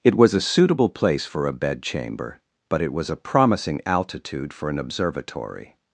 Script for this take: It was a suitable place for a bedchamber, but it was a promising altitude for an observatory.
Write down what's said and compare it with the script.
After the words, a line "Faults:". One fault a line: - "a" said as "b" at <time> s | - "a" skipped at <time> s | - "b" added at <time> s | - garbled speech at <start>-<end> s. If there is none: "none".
It was a suitable place for a bedchamber, but it was a promising altitude for an observatory.
Faults:
none